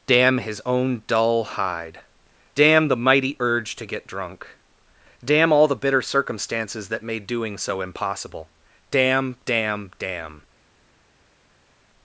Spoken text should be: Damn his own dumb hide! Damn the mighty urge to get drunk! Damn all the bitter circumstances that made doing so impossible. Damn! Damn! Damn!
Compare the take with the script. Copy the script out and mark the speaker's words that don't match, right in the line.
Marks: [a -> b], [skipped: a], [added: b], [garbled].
Damn his own [dumb -> dull] hide! Damn the mighty urge to get drunk! Damn all the bitter circumstances that made doing so impossible. Damn! Damn! Damn!